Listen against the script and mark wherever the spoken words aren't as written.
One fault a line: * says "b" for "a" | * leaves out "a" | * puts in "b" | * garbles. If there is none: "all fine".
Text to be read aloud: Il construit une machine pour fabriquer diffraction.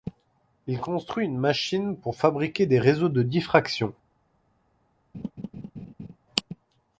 * puts in "des réseaux de"